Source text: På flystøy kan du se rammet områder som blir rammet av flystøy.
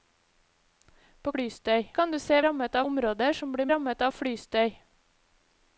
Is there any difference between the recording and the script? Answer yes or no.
no